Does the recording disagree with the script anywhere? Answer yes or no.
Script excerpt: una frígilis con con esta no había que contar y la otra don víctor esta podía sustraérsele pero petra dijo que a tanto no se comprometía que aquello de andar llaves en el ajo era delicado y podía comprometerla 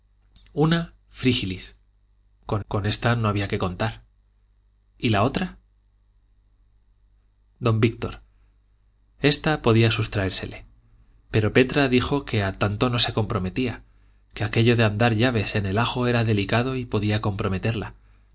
no